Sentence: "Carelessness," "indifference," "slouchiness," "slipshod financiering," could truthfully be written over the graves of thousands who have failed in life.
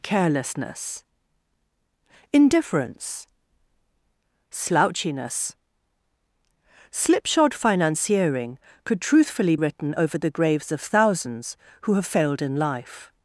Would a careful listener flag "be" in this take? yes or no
yes